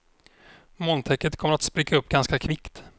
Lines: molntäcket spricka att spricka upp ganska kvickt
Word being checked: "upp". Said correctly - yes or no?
yes